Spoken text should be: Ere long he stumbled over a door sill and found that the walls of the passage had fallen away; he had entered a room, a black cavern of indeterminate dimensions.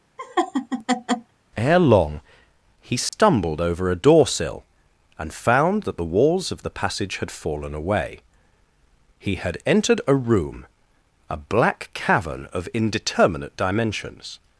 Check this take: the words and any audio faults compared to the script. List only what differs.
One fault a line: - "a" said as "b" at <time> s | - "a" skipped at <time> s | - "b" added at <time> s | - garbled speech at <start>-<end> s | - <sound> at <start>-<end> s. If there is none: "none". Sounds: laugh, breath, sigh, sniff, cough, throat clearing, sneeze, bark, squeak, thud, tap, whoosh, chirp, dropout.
- laugh at 0.2-1.3 s
- dropout at 3.1-3.1 s